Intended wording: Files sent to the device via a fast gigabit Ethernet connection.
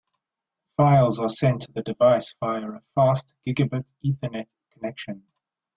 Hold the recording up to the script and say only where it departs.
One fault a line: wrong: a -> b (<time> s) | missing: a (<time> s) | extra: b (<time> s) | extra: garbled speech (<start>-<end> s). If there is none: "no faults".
extra: are (1.2 s)